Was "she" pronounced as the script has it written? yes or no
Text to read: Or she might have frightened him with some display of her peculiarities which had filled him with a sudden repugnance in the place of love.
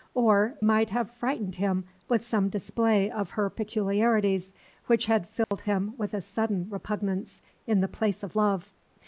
no